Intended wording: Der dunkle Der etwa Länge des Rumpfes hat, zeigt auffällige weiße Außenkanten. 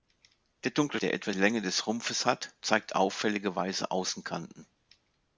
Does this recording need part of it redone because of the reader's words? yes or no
no